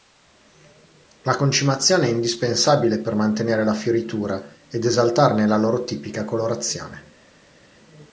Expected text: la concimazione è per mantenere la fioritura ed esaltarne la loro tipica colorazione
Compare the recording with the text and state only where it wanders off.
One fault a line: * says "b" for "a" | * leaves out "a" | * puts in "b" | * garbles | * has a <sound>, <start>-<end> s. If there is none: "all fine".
* puts in "indispensabile"